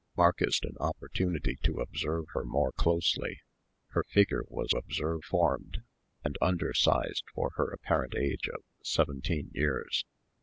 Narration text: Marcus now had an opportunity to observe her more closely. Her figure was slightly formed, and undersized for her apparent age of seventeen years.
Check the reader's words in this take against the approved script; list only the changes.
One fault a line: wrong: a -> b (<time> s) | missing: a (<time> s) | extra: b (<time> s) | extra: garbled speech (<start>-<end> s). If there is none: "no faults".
missing: now had (0.6 s)
wrong: slightly -> observe (4.7 s)